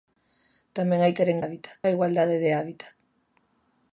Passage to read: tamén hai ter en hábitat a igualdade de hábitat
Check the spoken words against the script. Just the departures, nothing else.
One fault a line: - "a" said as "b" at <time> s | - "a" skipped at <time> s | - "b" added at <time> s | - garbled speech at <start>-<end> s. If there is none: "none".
none